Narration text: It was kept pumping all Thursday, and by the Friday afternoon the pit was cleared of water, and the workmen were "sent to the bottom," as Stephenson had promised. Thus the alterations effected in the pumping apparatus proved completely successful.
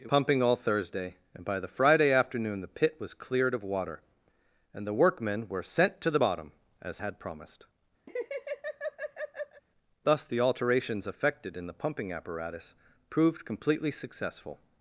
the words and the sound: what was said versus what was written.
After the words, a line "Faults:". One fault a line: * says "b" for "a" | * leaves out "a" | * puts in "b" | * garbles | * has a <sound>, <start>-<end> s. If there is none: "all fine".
It pumping all Thursday, and by the Friday afternoon the pit was cleared of water, and the workmen were "sent to the bottom," as Had promised. Thus the alterations effected in the pumping apparatus proved completely successful.
Faults:
* leaves out "was kept"
* leaves out "Stephenson"
* has a laugh, 8.1-9.6 s